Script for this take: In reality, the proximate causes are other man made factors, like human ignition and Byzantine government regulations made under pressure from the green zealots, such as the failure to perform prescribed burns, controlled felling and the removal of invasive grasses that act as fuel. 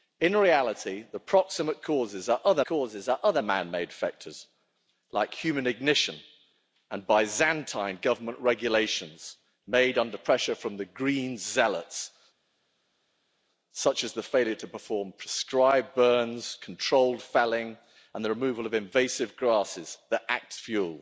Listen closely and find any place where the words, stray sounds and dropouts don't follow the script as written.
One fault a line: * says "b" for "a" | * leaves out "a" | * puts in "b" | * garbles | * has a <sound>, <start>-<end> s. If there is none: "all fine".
* puts in "causes are other"
* leaves out "as"